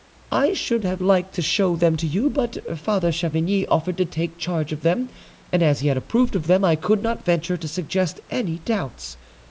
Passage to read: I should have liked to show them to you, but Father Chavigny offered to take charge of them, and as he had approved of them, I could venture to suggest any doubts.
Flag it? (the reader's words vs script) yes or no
yes